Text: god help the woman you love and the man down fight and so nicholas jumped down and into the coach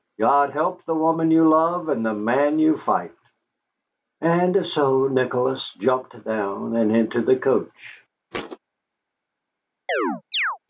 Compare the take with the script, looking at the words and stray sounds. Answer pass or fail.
fail